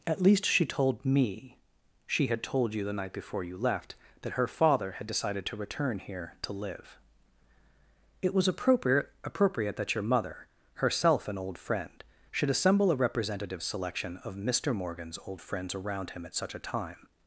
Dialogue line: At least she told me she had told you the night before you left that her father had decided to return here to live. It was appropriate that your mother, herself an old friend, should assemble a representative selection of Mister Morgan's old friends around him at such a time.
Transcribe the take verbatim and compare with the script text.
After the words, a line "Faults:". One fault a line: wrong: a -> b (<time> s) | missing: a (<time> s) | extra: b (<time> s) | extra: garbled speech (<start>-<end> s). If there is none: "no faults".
At least she told me she had told you the night before you left that her father had decided to return here to live. It was appropriate appropriate that your mother, herself an old friend, should assemble a representative selection of Mister Morgan's old friends around him at such a time.
Faults:
extra: appropriate (9.2 s)